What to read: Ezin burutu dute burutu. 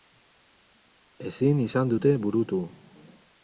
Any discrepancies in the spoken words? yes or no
yes